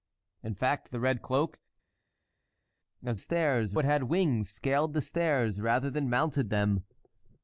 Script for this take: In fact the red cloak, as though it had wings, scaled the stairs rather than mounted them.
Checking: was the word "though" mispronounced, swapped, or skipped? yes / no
yes